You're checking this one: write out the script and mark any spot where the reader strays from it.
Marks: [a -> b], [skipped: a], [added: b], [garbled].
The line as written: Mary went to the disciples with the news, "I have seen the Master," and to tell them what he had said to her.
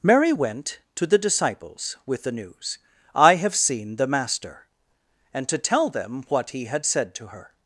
Mary went to the disciples with the news, "I have seen the Master," and to tell them what he had said to her.